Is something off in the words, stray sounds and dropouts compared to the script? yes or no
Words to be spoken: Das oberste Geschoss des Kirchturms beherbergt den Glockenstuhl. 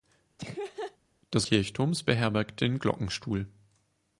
yes